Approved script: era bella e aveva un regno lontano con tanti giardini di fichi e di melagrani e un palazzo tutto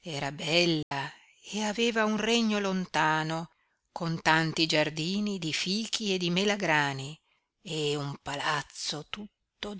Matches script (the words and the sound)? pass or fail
fail